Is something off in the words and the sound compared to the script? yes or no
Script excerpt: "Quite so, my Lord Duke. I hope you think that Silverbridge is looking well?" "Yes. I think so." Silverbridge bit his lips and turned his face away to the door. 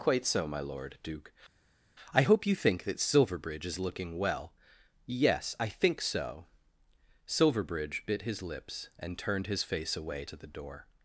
no